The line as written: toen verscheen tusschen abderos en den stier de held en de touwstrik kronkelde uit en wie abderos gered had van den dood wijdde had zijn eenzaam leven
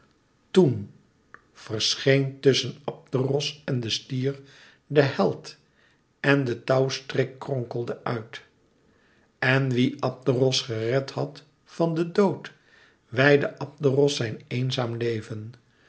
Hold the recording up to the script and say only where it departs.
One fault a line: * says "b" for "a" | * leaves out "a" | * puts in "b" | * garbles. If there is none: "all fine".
* says "abderos" for "had"